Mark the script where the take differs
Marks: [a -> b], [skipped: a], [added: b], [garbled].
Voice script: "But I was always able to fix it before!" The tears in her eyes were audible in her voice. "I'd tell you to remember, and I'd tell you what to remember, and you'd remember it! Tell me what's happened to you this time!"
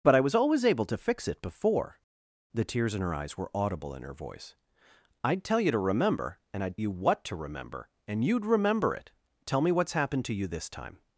"But I was always able to fix it before!" The tears in her eyes were audible in her voice. "I'd tell you to remember, and I'd [skipped: tell] you what to remember, and you'd remember it! Tell me what's happened to you this time!"